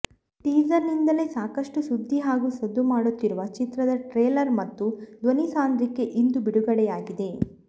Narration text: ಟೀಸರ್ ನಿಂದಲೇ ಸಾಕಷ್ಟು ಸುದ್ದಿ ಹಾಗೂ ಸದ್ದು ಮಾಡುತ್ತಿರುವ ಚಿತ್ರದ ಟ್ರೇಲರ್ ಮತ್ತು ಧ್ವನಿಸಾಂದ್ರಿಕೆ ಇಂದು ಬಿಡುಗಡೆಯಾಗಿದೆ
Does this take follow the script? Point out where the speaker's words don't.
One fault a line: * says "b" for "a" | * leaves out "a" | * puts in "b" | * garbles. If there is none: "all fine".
all fine